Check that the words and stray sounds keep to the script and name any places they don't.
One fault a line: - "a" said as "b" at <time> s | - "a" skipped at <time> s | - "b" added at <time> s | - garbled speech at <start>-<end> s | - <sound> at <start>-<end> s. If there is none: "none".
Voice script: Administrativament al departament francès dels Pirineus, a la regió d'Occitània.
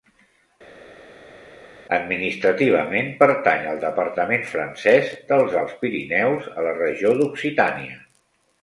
- "pertany" added at 3.2 s
- "Alts" added at 5.6 s